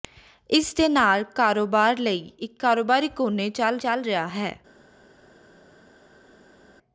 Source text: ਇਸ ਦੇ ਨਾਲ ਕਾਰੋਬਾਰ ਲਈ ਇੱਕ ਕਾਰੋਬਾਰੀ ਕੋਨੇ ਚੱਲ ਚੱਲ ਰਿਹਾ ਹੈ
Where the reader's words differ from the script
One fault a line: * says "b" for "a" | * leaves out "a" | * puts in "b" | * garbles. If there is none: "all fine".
all fine